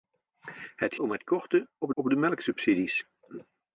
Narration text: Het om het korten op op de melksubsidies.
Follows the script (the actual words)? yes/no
yes